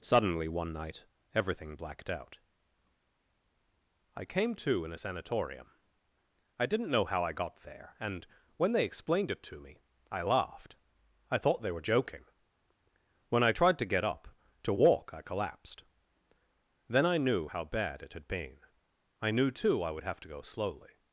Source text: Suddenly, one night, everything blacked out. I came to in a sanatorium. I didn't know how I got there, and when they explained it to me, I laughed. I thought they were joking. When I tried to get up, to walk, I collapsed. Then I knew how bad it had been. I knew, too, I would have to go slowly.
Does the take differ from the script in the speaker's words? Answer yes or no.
no